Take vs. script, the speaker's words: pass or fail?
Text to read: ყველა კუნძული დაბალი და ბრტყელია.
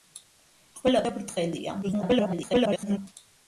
fail